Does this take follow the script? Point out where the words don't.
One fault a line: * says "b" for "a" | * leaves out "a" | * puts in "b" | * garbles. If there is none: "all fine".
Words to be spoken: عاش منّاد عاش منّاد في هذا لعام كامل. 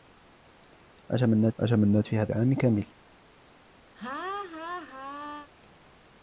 all fine